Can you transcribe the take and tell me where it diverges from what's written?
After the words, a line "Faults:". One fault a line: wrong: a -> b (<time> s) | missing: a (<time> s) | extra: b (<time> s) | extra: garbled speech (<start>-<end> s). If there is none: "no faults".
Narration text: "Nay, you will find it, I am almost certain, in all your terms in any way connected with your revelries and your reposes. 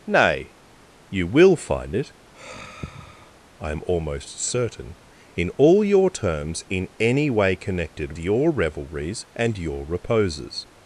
"Nay, you will find it, I am almost certain, in all your terms in any way connected your revelries and your reposes.
Faults:
missing: with (8.1 s)